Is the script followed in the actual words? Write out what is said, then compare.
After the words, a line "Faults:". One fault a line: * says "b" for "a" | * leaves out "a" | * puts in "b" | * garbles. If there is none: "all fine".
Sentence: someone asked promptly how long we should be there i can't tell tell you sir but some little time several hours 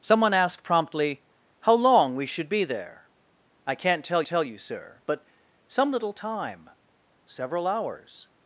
someone asked promptly how long we should be there i can't tell tell you sir but some little time several hours
Faults:
all fine